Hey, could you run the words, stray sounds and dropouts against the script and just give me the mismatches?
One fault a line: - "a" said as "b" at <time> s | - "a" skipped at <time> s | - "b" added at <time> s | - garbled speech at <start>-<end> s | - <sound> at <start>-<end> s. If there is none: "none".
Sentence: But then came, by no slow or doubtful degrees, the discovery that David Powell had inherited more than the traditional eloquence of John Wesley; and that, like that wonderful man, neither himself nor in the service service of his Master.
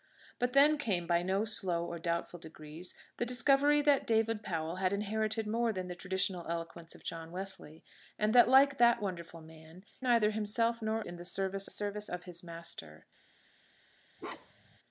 - bark at 14.2-14.8 s